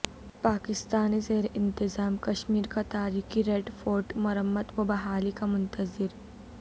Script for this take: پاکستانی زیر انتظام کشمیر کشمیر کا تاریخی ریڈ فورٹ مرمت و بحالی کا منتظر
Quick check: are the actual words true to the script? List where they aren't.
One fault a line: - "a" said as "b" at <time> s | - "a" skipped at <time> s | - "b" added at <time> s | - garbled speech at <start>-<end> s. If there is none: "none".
- "کشمیر" skipped at 2.7 s